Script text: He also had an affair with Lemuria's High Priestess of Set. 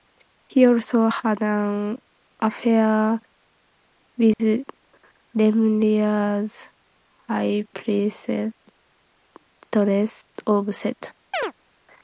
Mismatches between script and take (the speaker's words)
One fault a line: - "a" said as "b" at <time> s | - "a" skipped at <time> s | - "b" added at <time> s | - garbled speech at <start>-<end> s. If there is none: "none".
none